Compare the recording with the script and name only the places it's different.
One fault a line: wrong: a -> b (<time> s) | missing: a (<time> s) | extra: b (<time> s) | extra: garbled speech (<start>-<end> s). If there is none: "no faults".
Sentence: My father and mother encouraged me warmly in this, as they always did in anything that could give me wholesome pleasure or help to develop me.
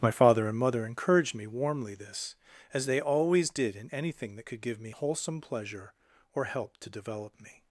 missing: in (1.9 s)